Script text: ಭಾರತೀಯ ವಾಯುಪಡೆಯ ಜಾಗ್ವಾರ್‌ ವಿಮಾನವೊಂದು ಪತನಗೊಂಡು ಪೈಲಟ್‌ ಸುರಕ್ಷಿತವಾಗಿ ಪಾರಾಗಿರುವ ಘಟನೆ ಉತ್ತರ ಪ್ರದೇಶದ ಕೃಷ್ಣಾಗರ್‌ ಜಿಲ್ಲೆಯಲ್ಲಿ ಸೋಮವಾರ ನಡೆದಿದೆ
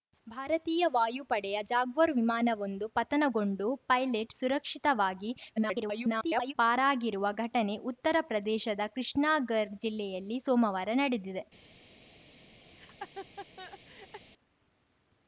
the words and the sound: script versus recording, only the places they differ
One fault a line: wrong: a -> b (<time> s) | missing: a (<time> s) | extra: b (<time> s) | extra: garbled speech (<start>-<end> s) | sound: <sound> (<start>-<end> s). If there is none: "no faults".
extra: garbled speech (5.6-6.5 s)
sound: laugh (12.7-14.3 s)